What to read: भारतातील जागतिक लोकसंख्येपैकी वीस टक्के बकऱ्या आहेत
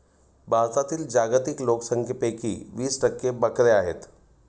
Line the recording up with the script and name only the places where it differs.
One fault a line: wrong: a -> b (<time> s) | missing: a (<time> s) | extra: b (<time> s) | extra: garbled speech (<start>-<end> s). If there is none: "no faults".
no faults